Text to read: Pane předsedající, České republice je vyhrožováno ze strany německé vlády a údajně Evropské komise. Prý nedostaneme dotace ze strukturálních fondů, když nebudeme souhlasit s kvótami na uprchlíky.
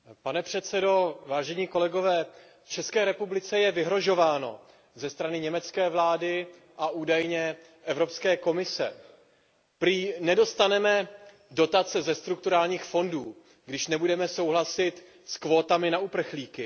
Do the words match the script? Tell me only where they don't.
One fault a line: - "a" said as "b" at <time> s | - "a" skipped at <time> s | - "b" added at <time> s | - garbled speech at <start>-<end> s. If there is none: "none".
none